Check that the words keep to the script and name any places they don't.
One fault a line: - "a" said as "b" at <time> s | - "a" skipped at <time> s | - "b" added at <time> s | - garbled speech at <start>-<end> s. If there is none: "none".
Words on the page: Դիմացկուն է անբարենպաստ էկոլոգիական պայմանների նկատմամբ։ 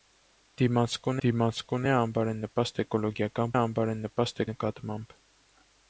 - "դիմացկուն" added at 1.2 s
- "պայմանների" said as "անբարենպաստ" at 3.6 s